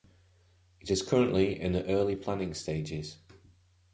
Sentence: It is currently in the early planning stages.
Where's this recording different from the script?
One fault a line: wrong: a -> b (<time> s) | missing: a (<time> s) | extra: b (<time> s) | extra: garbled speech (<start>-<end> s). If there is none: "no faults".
no faults